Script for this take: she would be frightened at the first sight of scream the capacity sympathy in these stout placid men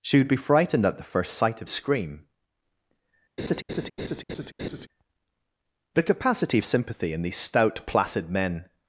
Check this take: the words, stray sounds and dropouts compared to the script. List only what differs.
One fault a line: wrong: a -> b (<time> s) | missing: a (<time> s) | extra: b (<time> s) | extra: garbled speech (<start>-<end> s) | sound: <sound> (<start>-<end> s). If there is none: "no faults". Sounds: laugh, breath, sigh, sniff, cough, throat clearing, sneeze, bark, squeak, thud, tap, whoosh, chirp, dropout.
sound: laugh (3.4-4.9 s)